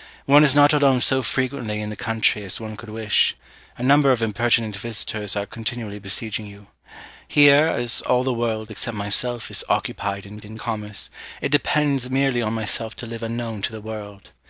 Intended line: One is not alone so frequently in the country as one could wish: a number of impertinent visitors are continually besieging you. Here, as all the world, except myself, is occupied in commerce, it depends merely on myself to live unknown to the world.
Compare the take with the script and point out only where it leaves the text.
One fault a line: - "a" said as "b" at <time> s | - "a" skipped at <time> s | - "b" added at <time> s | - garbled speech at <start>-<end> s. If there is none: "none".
- "in" added at 10.4 s